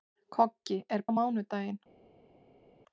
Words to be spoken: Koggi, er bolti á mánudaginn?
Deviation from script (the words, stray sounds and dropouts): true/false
true